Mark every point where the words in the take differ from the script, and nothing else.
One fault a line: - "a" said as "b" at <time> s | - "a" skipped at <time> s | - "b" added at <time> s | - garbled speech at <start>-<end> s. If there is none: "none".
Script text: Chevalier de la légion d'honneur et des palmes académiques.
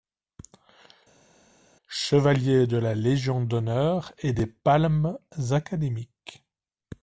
none